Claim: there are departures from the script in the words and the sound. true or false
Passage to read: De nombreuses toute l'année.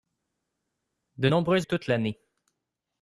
false